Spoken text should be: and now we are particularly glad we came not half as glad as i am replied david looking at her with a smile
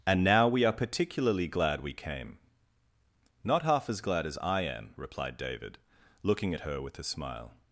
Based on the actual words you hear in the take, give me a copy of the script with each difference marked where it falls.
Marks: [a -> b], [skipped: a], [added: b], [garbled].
and now we are particularly glad we came not half as glad as i am replied david looking at her with a smile